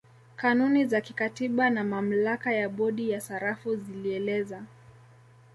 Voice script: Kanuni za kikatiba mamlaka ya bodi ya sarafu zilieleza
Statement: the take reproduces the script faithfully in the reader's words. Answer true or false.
false